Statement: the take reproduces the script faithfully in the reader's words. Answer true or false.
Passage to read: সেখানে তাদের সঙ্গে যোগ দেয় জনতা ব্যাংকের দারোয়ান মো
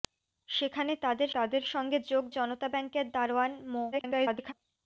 false